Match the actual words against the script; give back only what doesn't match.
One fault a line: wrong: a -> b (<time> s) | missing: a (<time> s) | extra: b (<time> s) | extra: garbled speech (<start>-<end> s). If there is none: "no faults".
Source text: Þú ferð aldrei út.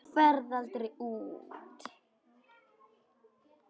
no faults